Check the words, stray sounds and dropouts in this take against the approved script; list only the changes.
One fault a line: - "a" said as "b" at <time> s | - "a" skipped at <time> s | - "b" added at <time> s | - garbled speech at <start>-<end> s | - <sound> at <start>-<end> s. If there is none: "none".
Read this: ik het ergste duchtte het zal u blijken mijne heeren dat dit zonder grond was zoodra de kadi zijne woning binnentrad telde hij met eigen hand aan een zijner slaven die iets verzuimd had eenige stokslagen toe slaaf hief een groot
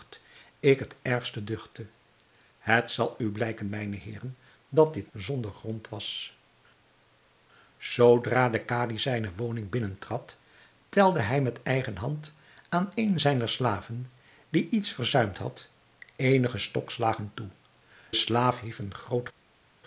none